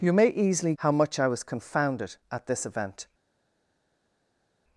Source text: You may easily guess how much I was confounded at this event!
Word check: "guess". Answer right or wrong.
wrong